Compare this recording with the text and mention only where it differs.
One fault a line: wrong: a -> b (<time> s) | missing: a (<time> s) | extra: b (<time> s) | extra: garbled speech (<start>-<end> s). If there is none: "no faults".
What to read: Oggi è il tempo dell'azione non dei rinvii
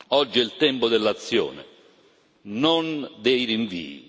no faults